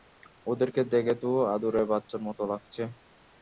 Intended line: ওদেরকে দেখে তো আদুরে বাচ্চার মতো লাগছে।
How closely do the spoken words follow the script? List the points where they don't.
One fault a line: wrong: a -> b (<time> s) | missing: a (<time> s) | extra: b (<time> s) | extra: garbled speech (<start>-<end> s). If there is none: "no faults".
no faults